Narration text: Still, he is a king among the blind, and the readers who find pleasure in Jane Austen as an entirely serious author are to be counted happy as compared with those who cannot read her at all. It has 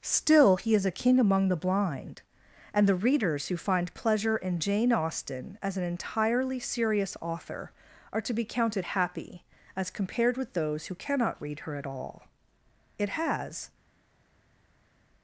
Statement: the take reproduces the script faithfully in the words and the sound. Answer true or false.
true